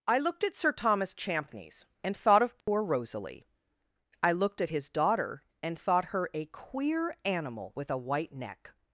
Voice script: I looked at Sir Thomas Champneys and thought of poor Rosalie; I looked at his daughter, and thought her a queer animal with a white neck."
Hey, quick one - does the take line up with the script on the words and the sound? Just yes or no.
no